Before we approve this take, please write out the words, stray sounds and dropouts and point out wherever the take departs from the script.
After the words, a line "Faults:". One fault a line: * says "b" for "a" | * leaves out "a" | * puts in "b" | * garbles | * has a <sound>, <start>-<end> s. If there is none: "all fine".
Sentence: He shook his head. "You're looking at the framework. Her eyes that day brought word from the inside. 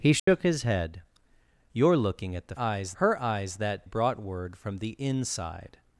He shook his head. "You're looking at the eyes. Her eyes that brought word from the inside.
Faults:
* has a dropout, 0.2-0.3 s
* says "eyes" for "framework"
* leaves out "day"